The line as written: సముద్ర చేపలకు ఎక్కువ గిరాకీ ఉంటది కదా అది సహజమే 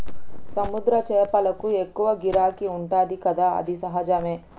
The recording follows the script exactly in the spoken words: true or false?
true